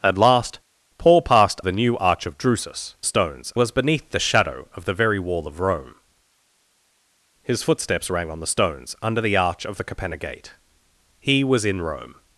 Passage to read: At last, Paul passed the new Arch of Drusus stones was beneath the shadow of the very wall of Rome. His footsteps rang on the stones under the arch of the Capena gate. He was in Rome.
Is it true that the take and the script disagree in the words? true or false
false